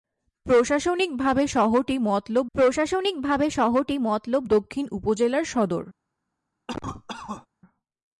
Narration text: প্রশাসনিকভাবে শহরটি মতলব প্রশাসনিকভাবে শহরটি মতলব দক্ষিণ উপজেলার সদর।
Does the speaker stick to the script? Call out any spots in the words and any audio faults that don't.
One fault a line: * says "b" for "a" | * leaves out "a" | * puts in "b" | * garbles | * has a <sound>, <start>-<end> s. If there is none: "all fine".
* has a cough, 6.7-7.5 s